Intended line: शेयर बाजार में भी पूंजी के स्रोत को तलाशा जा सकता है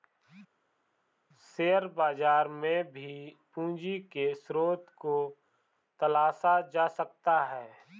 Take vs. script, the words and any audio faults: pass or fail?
pass